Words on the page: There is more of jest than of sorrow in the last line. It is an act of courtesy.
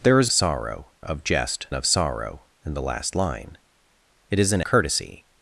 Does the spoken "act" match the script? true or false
false